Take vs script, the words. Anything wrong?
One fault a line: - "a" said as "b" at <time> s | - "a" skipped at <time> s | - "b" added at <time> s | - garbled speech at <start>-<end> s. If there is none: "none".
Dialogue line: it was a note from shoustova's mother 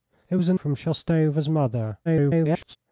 - "note" skipped at 0.5 s
- garbled speech at 2.1-2.8 s